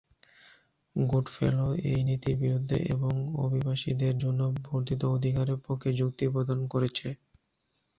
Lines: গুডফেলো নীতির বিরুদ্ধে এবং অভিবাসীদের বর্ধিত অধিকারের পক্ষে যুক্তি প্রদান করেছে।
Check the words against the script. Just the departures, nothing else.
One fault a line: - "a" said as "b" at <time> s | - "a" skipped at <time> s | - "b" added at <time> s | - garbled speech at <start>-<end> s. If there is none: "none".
- "এই" added at 1.9 s
- "জন্য" added at 4.2 s